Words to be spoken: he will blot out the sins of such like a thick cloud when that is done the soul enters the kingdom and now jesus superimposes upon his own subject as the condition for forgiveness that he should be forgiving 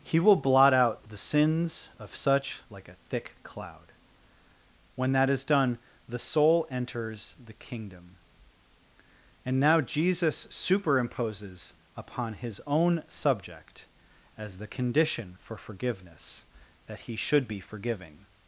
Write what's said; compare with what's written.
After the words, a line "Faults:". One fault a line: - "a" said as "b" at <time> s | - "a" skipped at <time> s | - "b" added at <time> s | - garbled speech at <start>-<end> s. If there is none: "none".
he will blot out the sins of such like a thick cloud when that is done the soul enters the kingdom and now jesus superimposes upon his own subject as the condition for forgiveness that he should be forgiving
Faults:
none